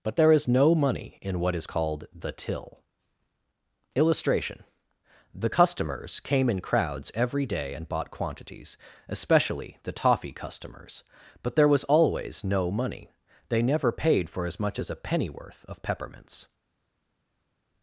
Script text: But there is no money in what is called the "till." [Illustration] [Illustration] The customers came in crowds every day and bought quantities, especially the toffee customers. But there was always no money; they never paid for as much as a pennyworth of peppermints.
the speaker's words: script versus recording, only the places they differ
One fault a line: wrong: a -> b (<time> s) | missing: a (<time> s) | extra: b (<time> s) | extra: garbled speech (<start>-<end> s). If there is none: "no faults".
missing: Illustration (4.6 s)